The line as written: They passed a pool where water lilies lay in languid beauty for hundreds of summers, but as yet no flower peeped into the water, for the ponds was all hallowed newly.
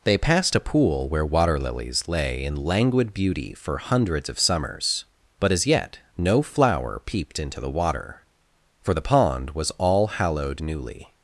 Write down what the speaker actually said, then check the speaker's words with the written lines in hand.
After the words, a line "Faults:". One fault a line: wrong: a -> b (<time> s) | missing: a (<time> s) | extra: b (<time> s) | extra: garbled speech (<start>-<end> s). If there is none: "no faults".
They passed a pool where water lilies lay in languid beauty for hundreds of summers, but as yet no flower peeped into the water, for the pond was all hallowed newly.
Faults:
wrong: ponds -> pond (9.0 s)